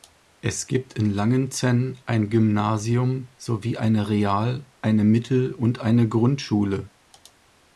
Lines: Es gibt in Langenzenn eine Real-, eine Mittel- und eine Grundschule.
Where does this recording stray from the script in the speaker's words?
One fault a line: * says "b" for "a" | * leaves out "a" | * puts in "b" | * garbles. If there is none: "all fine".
* puts in "ein Gymnasium sowie"